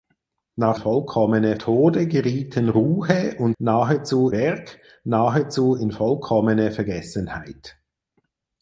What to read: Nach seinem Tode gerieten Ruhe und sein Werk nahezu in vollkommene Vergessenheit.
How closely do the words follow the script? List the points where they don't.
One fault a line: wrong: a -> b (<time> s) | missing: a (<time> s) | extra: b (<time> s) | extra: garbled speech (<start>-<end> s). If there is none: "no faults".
wrong: seinem -> vollkommene (0.8 s)
wrong: sein -> nahezu (3.6 s)